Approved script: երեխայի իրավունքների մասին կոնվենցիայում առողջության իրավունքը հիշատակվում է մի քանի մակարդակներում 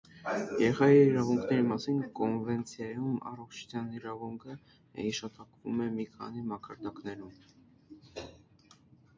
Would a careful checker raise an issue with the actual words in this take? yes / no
no